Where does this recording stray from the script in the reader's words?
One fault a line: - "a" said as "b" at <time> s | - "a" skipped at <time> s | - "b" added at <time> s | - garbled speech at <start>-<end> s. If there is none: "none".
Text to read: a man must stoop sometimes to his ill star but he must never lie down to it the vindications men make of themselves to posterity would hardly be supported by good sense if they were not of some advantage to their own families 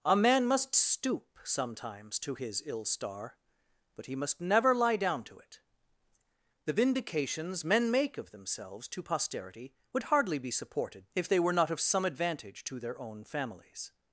- "by good sense" skipped at 11.1 s